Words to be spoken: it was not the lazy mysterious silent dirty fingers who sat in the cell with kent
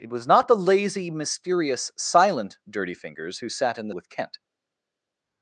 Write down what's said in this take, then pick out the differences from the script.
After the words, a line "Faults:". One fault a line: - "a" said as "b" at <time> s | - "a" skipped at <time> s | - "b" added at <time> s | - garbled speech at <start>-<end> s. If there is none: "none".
it was not the lazy mysterious silent dirty fingers who sat in the with kent
Faults:
- "cell" skipped at 4.0 s